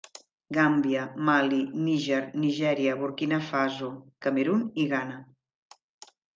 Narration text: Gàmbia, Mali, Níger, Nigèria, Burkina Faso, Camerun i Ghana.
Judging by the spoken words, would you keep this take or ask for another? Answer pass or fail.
pass